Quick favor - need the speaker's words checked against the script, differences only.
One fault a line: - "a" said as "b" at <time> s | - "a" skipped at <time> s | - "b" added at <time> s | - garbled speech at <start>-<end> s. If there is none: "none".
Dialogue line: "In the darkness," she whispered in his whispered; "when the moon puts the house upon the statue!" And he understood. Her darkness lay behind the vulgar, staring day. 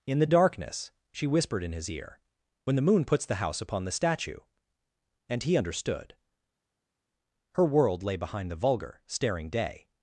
- "whispered" said as "ear" at 1.9 s
- "darkness" said as "world" at 7.6 s